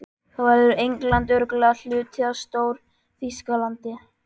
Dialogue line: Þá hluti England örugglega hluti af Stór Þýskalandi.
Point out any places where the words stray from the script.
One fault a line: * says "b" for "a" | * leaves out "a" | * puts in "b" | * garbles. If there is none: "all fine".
* says "verður" for "hluti"